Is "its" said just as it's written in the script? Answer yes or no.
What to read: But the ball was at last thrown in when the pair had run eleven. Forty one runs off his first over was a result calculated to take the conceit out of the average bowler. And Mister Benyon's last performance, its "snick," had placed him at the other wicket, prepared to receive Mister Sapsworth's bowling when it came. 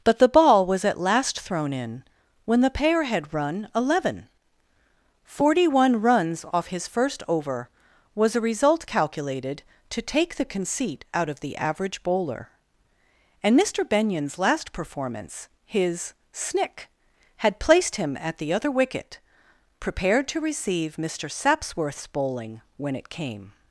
no